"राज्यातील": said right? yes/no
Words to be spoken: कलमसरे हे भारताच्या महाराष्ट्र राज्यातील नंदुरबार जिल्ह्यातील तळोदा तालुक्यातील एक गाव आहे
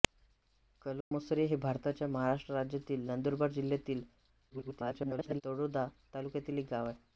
yes